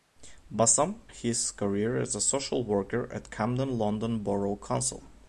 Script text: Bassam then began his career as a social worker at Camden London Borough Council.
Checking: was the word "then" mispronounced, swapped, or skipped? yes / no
yes